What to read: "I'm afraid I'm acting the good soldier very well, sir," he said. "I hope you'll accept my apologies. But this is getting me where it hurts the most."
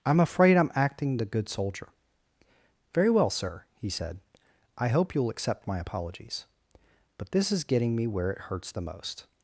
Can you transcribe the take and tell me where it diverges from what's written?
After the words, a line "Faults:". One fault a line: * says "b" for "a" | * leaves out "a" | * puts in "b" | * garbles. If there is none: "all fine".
"I'm afraid I'm acting the good soldier very well, sir," he said. "I hope you'll accept my apologies. But this is getting me where it hurts the most."
Faults:
all fine